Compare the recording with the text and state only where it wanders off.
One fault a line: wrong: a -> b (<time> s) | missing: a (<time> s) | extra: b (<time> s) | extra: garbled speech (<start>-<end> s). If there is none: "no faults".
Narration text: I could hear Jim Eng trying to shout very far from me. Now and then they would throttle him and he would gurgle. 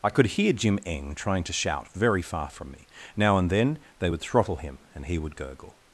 no faults